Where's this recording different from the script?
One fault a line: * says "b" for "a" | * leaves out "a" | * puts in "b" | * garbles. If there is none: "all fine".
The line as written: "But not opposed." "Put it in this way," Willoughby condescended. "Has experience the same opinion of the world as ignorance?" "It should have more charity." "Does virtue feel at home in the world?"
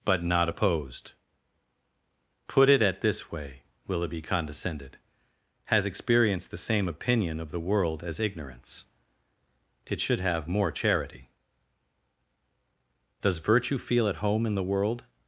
* says "at" for "in"